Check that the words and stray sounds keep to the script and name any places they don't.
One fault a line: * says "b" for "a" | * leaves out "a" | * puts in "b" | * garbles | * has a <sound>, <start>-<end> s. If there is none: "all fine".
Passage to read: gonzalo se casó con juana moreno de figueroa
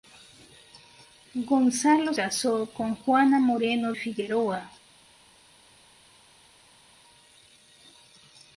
* leaves out "se"
* leaves out "de"